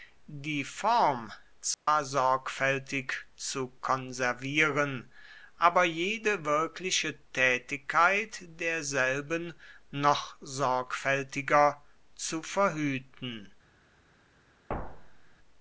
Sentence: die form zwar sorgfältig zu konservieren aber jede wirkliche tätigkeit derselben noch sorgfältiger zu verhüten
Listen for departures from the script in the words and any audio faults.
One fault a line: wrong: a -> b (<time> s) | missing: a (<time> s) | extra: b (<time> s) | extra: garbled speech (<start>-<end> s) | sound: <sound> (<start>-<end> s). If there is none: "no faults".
sound: dropout (1.7-1.9 s)
sound: thud (14.7-15.4 s)